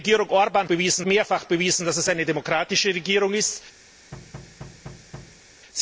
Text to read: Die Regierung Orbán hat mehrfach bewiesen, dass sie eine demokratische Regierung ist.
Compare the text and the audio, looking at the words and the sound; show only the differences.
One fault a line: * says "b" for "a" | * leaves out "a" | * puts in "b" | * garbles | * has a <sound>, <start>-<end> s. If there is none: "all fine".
* says "bewiesen" for "hat"
* has a thud, 4.1-5.4 s